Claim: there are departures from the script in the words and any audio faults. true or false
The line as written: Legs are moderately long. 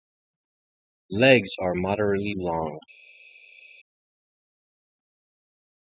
false